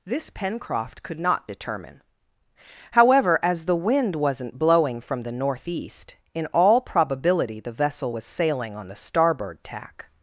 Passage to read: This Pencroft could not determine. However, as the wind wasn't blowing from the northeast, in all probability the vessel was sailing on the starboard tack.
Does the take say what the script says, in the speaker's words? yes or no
yes